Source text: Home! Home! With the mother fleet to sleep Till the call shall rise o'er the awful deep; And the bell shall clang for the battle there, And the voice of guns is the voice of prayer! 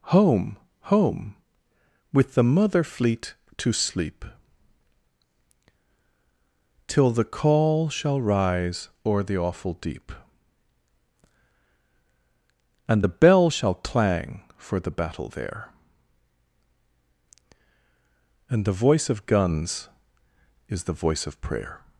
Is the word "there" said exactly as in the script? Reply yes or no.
yes